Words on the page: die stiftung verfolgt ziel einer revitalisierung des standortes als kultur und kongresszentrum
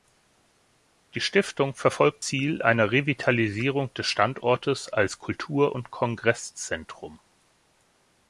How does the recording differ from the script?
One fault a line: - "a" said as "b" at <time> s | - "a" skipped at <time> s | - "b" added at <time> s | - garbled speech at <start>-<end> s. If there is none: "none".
none